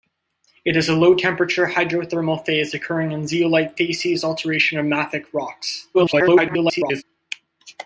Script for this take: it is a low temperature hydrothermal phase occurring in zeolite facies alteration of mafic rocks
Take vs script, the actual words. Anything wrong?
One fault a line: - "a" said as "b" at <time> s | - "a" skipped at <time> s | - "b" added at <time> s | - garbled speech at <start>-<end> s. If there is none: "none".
- garbled speech at 5.9-7.0 s